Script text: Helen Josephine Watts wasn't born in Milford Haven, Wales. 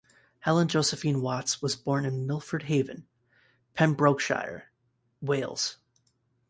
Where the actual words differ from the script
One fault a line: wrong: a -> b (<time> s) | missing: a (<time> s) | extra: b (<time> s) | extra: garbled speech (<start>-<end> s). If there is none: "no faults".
wrong: wasn't -> was (1.6 s)
extra: Pembrokeshire (3.7 s)